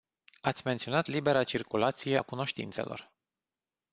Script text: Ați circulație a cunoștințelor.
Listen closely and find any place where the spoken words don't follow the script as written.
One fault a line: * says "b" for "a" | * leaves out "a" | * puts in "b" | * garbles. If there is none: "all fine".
* puts in "menționat libera"